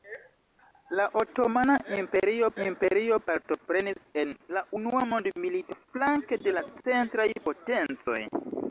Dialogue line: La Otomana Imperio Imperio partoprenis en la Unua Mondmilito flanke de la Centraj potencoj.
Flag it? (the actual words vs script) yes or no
no